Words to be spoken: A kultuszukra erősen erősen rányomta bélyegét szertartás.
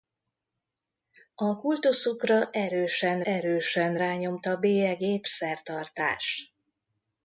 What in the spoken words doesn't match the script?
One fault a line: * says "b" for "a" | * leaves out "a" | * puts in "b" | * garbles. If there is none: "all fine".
all fine